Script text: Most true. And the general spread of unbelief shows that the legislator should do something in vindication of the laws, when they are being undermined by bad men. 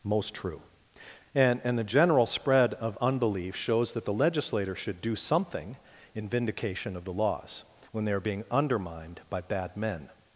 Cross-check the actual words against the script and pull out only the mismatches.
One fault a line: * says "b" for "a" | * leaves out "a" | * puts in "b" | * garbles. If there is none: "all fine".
* puts in "And"